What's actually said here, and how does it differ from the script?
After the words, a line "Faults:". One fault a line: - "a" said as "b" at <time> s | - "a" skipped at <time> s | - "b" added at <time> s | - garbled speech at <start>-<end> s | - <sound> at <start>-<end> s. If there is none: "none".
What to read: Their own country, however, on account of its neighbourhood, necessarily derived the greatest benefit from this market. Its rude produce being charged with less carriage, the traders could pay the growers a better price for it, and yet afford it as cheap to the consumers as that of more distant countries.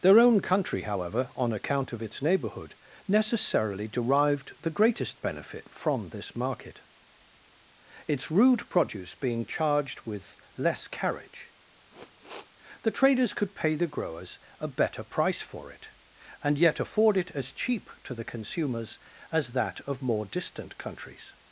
Their own country, however, on account of its neighbourhood, necessarily derived the greatest benefit from this market. Its rude produce being charged with less carriage, the traders could pay the growers a better price for it, and yet afford it as cheap to the consumers as that of more distant countries.
Faults:
- sniff at 11.9-12.5 s